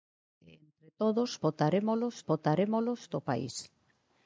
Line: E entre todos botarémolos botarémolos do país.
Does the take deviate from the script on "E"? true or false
false